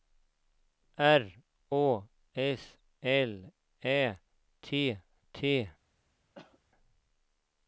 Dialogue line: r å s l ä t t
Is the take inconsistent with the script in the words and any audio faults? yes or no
yes